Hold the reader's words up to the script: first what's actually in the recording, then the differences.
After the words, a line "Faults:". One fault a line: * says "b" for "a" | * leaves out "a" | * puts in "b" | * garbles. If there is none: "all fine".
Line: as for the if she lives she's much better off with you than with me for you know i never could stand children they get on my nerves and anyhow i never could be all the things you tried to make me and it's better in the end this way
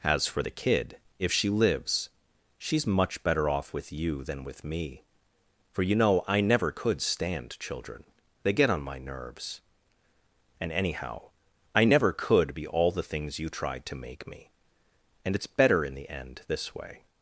as for the kid if she lives she's much better off with you than with me for you know i never could stand children they get on my nerves and anyhow i never could be all the things you tried to make me and it's better in the end this way
Faults:
* puts in "kid"